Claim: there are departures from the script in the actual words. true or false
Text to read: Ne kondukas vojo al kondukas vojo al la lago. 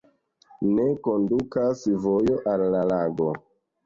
true